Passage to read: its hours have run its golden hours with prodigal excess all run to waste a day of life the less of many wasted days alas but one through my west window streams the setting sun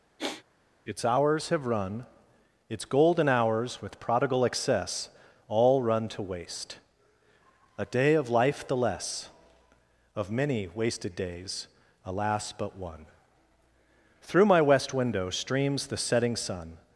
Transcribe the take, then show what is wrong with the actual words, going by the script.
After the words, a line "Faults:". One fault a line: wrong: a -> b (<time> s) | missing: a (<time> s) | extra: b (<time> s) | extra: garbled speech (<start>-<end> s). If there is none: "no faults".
its hours have run its golden hours with prodigal excess all run to waste a day of life the less of many wasted days alas but one through my west window streams the setting sun
Faults:
no faults